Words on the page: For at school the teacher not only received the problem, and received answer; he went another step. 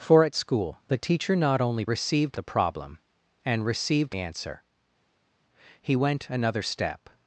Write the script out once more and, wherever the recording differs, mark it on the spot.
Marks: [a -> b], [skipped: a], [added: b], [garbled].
For at school the teacher not only received the problem, and received answer; he went another step.